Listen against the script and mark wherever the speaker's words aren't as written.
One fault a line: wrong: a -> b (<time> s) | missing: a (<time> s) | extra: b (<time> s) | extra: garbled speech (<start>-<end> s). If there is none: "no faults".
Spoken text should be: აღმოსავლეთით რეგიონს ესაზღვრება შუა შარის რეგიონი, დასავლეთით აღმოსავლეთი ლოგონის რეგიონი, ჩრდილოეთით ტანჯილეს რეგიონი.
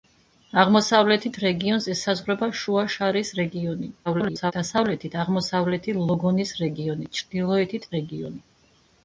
extra: garbled speech (4.1-4.5 s)
missing: ტანჯილეს (7.9 s)